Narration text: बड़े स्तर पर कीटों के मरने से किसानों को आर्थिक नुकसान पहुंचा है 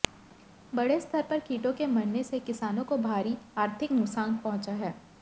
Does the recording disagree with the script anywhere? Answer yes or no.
yes